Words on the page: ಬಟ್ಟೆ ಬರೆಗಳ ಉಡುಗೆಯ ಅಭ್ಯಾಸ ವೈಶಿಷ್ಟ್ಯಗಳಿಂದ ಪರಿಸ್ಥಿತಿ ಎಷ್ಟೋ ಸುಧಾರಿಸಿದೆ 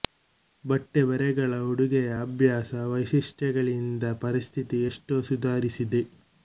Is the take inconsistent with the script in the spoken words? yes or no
no